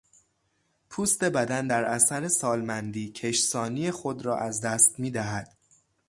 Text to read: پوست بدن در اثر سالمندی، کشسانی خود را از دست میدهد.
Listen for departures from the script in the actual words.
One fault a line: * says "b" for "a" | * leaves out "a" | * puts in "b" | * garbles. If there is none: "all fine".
all fine